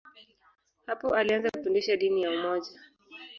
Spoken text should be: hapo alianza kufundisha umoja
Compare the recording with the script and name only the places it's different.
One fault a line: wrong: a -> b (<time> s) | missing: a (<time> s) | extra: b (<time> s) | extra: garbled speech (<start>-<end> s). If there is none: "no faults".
extra: dini ya (2.0 s)